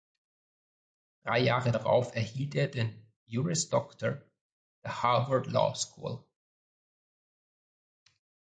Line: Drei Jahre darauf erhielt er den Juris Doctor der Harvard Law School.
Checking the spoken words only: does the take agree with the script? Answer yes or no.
yes